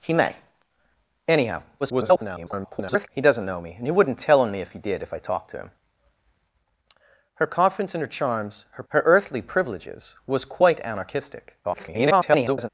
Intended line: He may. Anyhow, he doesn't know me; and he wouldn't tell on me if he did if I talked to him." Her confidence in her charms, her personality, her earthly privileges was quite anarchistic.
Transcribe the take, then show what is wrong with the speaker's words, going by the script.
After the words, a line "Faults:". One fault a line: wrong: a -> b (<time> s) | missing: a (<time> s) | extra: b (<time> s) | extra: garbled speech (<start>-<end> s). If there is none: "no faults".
He may. Anyhow, [garbled] he doesn't know me; and he wouldn't tell on me if he did if I talked to him." Her confidence in her charms, her her earthly privileges was quite anarchistic. [garbled]
Faults:
extra: garbled speech (1.8-3.1 s)
missing: personality (8.8 s)
extra: garbled speech (11.6-12.7 s)